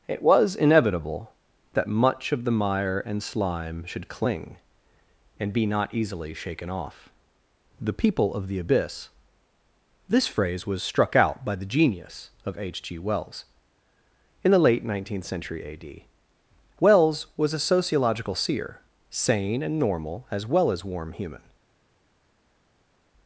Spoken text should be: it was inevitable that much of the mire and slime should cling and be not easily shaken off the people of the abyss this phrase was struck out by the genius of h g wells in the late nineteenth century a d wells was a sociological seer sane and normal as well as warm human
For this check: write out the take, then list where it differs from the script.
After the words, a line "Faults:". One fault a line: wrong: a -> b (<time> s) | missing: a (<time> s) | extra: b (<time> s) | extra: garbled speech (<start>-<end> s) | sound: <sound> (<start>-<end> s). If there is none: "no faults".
it was inevitable that much of the mire and slime should cling and be not easily shaken off the people of the abyss this phrase was struck out by the genius of h g wells in the late nineteenth century a d wells was a sociological seer sane and normal as well as warm human
Faults:
no faults